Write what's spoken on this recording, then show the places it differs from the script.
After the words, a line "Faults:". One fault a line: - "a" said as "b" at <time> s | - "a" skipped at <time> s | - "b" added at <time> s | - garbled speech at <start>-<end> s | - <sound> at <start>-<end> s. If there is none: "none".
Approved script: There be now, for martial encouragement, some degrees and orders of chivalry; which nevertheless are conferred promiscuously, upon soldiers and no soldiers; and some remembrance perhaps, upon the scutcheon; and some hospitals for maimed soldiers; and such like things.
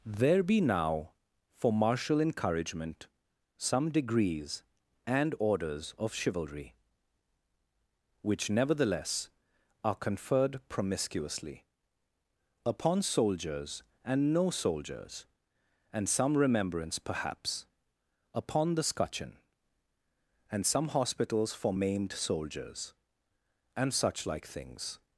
There be now, for martial encouragement, some degrees and orders of chivalry; which nevertheless are conferred promiscuously, upon soldiers and no soldiers; and some remembrance perhaps, upon the scutcheon; and some hospitals for maimed soldiers; and such like things.
Faults:
none